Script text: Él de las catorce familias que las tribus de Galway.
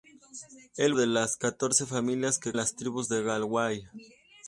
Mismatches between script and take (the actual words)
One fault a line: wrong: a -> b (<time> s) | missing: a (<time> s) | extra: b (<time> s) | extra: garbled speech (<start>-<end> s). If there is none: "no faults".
no faults